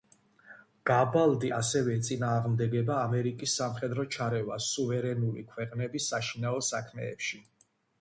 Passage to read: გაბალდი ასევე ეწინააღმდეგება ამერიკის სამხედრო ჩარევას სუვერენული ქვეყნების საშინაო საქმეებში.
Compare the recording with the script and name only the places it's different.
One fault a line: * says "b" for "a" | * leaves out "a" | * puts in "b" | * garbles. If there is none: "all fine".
all fine